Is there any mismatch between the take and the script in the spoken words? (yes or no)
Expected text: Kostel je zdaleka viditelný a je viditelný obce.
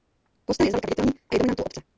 yes